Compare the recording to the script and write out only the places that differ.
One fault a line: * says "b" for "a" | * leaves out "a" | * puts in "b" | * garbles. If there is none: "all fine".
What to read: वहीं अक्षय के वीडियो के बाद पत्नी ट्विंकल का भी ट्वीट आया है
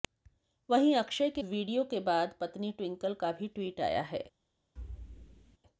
all fine